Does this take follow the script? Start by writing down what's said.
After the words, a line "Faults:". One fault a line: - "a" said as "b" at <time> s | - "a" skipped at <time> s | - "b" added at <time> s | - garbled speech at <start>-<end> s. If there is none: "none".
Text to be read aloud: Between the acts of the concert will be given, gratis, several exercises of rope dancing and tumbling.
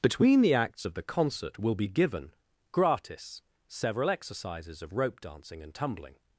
Between the acts of the concert will be given, gratis, several exercises of rope dancing and tumbling.
Faults:
none